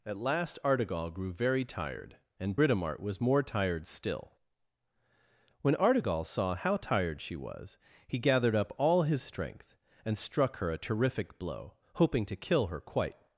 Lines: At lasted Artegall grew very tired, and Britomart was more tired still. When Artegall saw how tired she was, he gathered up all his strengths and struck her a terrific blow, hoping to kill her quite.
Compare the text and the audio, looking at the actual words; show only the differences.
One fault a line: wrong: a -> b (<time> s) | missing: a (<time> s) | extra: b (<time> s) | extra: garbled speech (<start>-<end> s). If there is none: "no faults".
wrong: lasted -> last (0.2 s)
wrong: strengths -> strength (9.2 s)